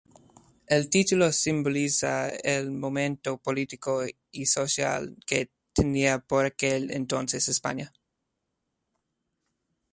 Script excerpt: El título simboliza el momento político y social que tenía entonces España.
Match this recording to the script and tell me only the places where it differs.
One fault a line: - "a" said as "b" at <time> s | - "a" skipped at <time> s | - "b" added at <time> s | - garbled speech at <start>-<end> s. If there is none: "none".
- "por aquel" added at 6.2 s